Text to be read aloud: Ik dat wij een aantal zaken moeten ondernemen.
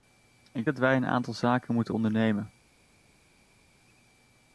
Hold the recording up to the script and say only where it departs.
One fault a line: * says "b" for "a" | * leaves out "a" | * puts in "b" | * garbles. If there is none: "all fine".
all fine